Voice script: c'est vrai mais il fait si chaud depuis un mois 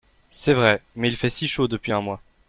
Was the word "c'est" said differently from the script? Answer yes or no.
no